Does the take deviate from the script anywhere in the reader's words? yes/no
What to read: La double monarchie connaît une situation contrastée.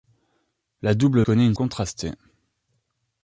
yes